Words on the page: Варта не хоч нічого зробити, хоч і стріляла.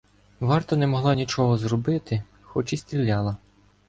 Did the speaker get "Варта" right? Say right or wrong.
right